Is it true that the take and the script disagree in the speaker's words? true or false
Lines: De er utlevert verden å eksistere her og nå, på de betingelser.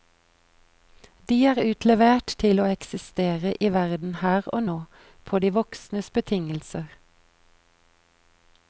true